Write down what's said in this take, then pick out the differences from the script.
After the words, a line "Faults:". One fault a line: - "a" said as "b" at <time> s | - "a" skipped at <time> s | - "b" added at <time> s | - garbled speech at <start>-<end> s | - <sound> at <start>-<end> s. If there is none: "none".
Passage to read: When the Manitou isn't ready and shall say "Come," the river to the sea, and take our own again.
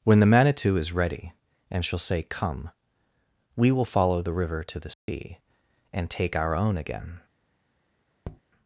When the Manitou is ready and shall say "Come," we will follow the river to the sea, and take our own again.
Faults:
- "isn't" said as "is" at 0.8 s
- "we will follow" added at 3.5 s
- dropout at 4.9-5.1 s
- tap at 8.2-8.4 s